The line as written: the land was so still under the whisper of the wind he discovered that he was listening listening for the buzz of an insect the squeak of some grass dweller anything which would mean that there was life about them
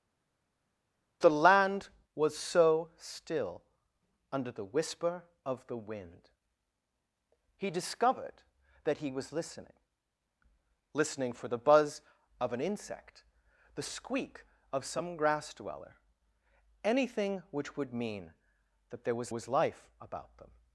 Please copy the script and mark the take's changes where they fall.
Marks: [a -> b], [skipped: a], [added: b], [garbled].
the land was so still under the whisper of the wind he discovered that he was listening listening for the buzz of an insect the squeak of some grass dweller anything which would mean that there was [added: was] life about them